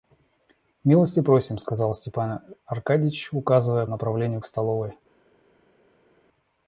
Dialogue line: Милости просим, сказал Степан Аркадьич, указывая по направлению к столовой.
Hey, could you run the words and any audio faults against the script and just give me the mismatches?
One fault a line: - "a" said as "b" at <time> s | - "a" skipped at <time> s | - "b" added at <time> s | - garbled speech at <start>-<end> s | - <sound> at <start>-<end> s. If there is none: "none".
- "по" skipped at 3.9 s